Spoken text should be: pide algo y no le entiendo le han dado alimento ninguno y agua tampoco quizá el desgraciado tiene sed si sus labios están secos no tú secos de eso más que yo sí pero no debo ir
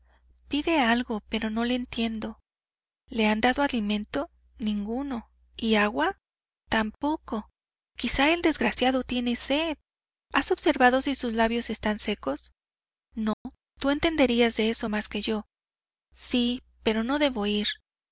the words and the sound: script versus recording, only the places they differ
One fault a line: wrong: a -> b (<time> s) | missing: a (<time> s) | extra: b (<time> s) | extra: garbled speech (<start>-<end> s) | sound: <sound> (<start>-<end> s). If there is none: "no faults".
wrong: y -> pero (1.3 s)
extra: has observado (10.3 s)
sound: dropout (13.3-13.5 s)
wrong: secos -> entenderías (13.9 s)